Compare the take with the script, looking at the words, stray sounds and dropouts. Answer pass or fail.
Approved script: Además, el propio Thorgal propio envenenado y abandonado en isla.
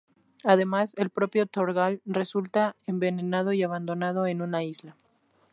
fail